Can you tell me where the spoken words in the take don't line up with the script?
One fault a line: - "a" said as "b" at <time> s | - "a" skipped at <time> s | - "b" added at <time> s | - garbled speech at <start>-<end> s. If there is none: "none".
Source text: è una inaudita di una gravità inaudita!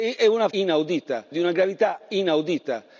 none